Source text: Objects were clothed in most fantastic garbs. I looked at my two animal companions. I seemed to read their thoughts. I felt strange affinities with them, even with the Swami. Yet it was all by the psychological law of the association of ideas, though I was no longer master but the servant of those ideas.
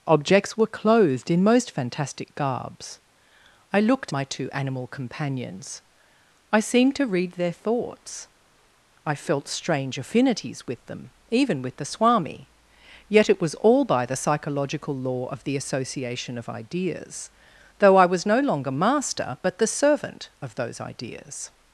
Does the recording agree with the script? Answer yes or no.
no